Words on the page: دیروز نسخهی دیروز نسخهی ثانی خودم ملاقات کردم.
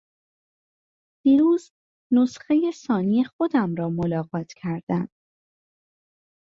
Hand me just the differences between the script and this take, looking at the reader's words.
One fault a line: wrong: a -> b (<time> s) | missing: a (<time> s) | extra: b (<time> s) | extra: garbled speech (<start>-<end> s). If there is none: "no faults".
missing: دیروز نسخهی (2.7 s)
extra: را (3.8 s)